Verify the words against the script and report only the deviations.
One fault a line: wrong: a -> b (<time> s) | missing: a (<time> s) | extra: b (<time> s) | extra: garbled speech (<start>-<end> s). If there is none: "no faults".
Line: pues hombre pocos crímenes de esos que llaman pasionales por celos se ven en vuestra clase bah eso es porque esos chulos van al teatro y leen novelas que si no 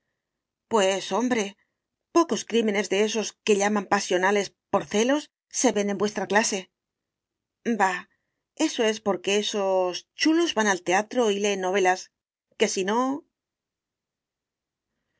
no faults